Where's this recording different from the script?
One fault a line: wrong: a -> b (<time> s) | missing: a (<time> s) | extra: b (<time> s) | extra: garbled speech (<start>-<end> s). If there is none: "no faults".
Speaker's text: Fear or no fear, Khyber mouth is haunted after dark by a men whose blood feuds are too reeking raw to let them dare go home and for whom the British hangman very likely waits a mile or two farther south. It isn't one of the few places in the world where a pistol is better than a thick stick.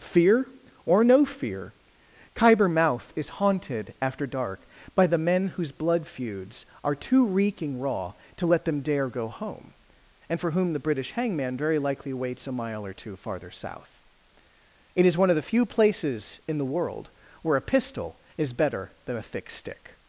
wrong: a -> the (5.1 s)
wrong: isn't -> is (15.1 s)